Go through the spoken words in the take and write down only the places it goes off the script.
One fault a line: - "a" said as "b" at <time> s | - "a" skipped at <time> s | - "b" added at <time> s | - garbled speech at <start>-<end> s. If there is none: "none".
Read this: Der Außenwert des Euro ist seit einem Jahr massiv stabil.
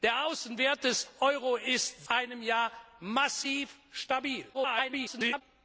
- "seit" skipped at 2.1 s
- garbled speech at 4.5-5.4 s